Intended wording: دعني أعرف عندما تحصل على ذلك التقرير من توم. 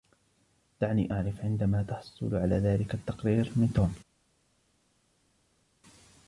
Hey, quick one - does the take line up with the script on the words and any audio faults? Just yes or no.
yes